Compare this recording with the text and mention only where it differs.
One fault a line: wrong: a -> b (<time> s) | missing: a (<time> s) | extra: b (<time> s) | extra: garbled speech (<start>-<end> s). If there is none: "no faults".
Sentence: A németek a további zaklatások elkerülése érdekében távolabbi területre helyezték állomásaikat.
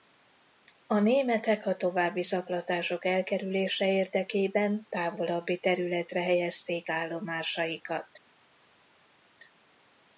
no faults